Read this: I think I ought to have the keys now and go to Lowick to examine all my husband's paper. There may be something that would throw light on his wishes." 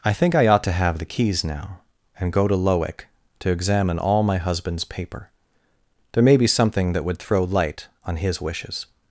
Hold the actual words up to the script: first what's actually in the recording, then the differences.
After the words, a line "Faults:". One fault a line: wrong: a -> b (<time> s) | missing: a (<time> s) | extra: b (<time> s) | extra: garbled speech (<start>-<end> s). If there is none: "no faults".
I think I ought to have the keys now and go to Lowick to examine all my husband's paper. There may be something that would throw light on his wishes."
Faults:
no faults